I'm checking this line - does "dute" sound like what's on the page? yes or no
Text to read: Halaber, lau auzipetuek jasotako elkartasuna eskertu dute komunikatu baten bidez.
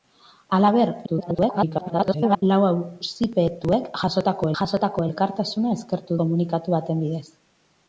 no